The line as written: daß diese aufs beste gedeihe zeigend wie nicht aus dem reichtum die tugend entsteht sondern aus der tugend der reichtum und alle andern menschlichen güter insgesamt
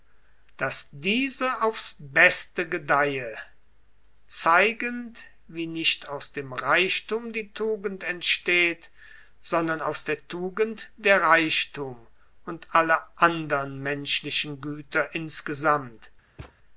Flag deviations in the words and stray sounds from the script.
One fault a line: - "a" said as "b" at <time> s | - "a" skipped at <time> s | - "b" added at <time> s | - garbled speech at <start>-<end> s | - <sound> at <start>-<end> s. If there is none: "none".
- thud at 16.4-16.6 s